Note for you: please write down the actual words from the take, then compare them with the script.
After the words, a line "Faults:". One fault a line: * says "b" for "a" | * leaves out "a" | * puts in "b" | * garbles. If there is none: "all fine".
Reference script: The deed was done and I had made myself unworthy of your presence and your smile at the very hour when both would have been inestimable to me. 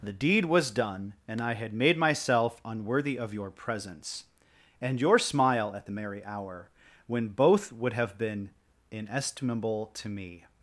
The deed was done and I had made myself unworthy of your presence and your smile at the merry hour when both would have been inestimable to me.
Faults:
* says "merry" for "very"